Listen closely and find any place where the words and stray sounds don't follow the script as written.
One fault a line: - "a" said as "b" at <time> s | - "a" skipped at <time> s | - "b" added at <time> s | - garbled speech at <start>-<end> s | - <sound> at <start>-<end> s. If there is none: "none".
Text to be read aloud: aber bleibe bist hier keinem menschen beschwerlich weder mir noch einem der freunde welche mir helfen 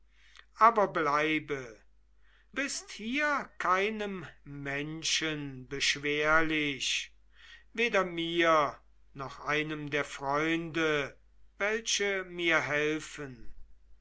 none